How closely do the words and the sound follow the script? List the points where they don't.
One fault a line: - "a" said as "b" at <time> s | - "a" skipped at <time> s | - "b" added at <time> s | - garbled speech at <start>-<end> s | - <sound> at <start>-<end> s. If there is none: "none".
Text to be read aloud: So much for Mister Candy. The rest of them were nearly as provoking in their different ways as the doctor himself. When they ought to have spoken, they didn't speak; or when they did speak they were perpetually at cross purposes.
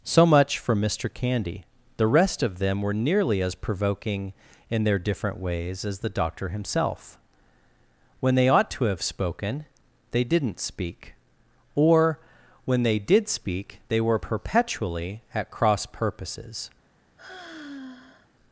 - sigh at 17.2-18.3 s